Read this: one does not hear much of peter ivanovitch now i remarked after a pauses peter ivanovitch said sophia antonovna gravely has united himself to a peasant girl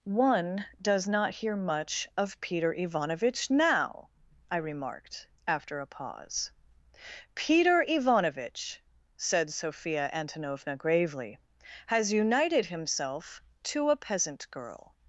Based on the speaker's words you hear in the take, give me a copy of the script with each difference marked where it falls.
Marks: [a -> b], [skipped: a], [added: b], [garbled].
one does not hear much of peter ivanovitch now i remarked after a [pauses -> pause] peter ivanovitch said sophia antonovna gravely has united himself to a peasant girl